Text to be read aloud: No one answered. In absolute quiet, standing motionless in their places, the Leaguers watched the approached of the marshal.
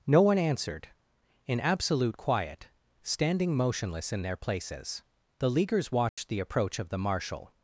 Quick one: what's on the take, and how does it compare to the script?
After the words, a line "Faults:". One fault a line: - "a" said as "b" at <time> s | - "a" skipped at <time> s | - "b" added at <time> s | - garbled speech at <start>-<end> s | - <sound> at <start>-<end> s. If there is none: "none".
No one answered. In absolute quiet, standing motionless in their places, the Leaguers watched the approach of the marshal.
Faults:
- dropout at 6.1-6.2 s
- "approached" said as "approach" at 6.4 s